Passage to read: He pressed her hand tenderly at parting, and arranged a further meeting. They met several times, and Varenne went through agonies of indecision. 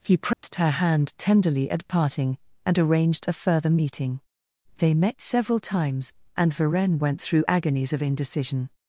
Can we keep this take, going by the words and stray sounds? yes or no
no